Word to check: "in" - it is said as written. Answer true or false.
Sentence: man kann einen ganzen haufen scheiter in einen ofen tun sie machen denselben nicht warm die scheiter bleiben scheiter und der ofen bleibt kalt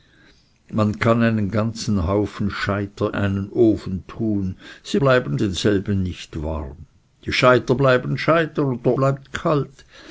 false